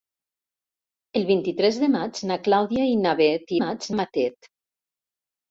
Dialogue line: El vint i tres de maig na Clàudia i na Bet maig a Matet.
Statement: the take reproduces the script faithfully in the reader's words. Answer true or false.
true